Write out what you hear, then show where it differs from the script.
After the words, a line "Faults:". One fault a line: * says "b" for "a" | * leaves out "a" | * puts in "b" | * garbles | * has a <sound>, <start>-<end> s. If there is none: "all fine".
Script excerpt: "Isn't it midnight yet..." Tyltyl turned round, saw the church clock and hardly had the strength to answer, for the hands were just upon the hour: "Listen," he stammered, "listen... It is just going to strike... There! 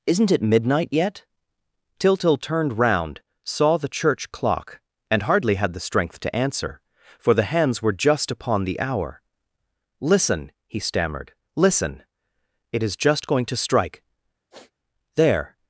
"Isn't it midnight yet..." Tyltyl turned round, saw the church clock and hardly had the strength to answer, for the hands were just upon the hour: "Listen," he stammered, "listen... It is just going to strike... There!
Faults:
* has a sniff, 14.5-14.7 s